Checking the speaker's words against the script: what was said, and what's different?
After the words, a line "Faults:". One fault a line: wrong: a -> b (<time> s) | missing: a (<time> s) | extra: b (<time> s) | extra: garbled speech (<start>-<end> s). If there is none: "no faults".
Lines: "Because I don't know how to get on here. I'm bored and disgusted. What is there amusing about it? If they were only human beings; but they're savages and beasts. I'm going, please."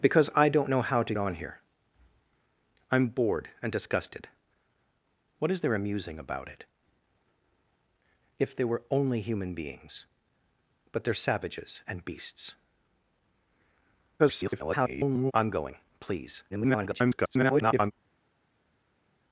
"Because I don't know how to on here. I'm bored and disgusted. What is there amusing about it? If they were only human beings; but they're savages and beasts. [garbled] I'm going, please." [garbled]
Faults:
missing: get (1.1 s)
extra: garbled speech (14.2-15.3 s)
extra: garbled speech (16.5-17.9 s)